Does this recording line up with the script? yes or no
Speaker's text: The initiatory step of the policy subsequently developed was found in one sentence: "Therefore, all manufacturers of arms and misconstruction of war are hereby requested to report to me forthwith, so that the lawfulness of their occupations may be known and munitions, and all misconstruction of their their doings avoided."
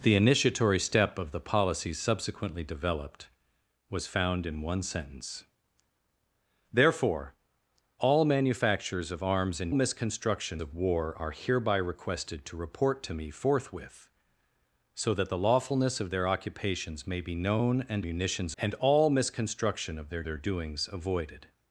yes